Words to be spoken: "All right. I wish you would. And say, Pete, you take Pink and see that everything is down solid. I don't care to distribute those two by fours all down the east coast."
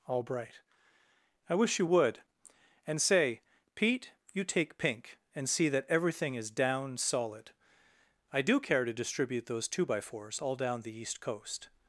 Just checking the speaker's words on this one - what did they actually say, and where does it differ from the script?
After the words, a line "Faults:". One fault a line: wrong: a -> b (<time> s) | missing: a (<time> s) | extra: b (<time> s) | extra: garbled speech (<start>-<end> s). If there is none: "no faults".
"All bright. I wish you would. And say, Pete, you take Pink and see that everything is down solid. I do care to distribute those two by fours all down the east coast."
Faults:
wrong: right -> bright (0.2 s)
wrong: don't -> do (8.4 s)